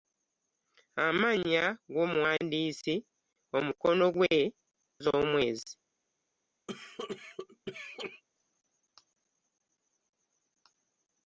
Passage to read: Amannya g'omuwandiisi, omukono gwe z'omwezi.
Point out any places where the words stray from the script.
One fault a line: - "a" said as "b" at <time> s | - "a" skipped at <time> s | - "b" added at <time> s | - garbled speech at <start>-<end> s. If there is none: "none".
none